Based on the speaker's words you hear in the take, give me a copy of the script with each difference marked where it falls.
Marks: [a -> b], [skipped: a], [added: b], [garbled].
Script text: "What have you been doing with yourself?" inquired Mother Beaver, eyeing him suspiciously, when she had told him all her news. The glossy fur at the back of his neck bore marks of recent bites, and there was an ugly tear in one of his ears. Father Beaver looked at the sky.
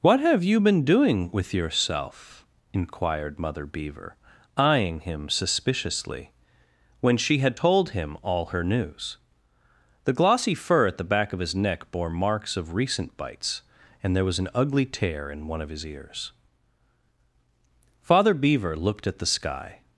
"What have you been doing with yourself?" inquired Mother Beaver, eyeing him suspiciously, when she had told him all her news. The glossy fur at the back of his neck bore marks of recent bites, and there was an ugly tear in one of his ears. Father Beaver looked at the sky.